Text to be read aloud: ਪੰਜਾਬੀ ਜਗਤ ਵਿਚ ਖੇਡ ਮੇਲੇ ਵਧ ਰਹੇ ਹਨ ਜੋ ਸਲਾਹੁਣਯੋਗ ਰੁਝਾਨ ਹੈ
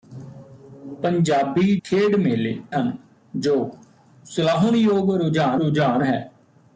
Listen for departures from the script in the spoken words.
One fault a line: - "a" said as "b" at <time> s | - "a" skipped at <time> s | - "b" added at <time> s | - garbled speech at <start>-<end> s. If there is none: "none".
- "ਜਗਤ ਵਿਚ" skipped at 1.8 s
- "ਵਧ ਰਹੇ" skipped at 2.6 s
- "ਰੁਝਾਨ" added at 5.5 s